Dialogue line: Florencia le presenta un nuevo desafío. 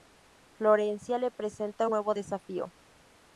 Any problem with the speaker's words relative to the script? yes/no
no